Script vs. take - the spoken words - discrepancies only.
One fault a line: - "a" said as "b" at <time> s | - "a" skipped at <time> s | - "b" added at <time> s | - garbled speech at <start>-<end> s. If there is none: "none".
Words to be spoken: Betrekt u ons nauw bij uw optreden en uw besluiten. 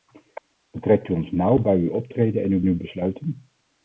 - "uw" added at 2.7 s